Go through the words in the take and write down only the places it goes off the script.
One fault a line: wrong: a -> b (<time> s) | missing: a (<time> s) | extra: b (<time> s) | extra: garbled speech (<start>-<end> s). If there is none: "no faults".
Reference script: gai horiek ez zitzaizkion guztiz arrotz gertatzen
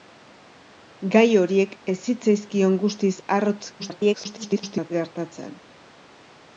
extra: garbled speech (3.8-4.9 s)